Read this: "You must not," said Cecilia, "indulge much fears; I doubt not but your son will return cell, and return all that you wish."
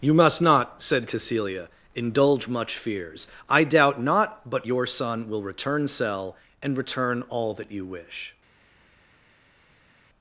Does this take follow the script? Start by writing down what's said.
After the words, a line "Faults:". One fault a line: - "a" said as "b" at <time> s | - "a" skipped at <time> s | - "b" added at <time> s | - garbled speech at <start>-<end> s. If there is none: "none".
"You must not," said Cecilia, "indulge much fears; I doubt not but your son will return cell, and return all that you wish."
Faults:
none